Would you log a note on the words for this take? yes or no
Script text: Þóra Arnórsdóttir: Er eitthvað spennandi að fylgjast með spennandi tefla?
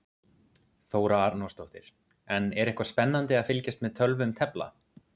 yes